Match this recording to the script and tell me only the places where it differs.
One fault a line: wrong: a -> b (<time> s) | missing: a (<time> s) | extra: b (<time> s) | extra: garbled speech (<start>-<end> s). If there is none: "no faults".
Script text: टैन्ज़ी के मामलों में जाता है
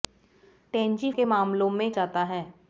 no faults